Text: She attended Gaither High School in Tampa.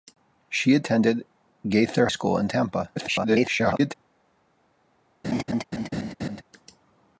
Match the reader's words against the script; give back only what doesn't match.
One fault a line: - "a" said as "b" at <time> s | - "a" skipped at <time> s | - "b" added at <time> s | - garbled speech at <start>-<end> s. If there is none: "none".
- "High" skipped at 2.1 s
- garbled speech at 3.0-3.9 s